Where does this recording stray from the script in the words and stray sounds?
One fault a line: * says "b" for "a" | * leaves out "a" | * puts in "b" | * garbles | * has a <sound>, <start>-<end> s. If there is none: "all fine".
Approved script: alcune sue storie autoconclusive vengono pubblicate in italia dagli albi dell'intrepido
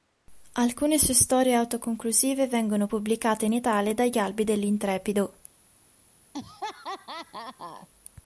* has a laugh, 6.3-7.9 s